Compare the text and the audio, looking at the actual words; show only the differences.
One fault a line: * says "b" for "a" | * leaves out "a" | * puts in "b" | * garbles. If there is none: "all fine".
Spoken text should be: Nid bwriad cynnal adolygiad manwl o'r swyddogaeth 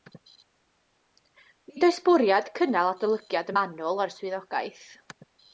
* puts in "oes"